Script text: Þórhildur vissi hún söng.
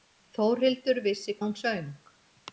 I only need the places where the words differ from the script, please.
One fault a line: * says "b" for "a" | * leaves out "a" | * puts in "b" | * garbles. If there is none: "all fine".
all fine